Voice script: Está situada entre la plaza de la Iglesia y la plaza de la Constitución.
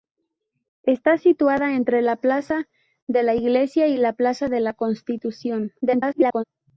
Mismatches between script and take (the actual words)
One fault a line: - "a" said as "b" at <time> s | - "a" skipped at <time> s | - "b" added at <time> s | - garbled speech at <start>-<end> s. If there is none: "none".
- garbled speech at 5.8-6.4 s